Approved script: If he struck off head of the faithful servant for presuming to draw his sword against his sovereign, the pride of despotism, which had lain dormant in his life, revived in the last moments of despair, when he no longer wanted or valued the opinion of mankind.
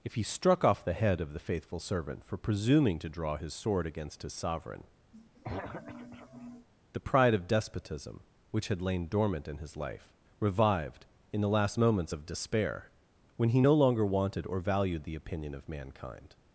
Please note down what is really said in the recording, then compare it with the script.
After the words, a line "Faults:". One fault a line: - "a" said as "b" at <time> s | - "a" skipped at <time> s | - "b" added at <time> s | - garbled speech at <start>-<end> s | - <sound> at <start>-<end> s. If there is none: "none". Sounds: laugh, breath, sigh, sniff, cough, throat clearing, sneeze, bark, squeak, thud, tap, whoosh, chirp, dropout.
If he struck off the head of the faithful servant for presuming to draw his sword against his sovereign, the pride of despotism, which had lain dormant in his life, revived in the last moments of despair, when he no longer wanted or valued the opinion of mankind.
Faults:
- "the" added at 0.8 s
- throat clearing at 5.1-6.7 s